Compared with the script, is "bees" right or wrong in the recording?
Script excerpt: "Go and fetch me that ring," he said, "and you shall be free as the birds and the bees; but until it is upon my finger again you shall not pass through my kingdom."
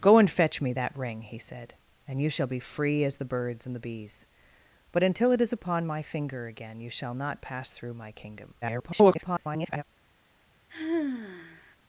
right